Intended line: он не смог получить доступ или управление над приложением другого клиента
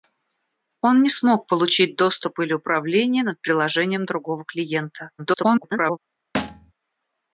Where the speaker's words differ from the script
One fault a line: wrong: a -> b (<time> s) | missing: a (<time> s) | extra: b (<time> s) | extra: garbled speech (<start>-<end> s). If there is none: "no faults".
extra: garbled speech (5.2-6.0 s)